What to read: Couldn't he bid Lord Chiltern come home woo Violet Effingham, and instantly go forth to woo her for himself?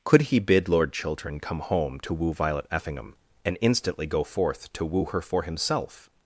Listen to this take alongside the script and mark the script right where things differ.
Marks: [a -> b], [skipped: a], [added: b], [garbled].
[Couldn't -> Could] he bid Lord Chiltern come home [added: to] woo Violet Effingham, and instantly go forth to woo her for himself?